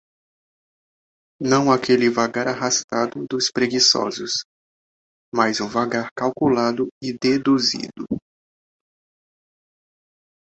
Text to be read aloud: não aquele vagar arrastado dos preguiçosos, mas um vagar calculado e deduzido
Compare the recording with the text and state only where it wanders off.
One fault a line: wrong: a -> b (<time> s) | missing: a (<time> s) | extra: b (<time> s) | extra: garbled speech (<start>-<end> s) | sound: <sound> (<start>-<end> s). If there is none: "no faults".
no faults